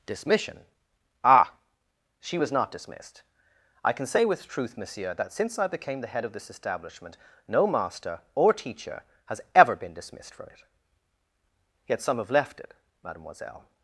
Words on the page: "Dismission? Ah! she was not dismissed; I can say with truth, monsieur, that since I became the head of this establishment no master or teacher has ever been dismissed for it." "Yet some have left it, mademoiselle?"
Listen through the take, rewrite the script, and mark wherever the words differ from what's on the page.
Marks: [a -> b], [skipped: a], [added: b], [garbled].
"Dismission? Ah! she was not dismissed; I can say with truth, monsieur, that since I became the head of this establishment no master or teacher has ever been dismissed for it." "Yet some have left it, mademoiselle?"